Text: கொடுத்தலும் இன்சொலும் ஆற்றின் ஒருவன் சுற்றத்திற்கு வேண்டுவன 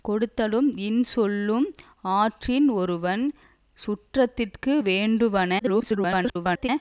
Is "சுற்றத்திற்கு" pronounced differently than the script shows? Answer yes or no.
no